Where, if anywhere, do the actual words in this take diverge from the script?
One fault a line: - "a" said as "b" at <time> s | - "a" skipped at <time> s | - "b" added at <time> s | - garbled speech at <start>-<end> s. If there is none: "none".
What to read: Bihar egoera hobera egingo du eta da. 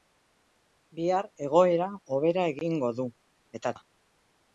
none